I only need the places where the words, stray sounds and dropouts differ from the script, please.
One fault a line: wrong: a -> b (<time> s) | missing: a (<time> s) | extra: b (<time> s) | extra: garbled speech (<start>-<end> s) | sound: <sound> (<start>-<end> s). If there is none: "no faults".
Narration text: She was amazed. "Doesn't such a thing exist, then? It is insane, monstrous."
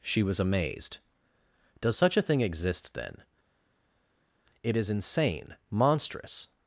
wrong: Doesn't -> Does (1.8 s)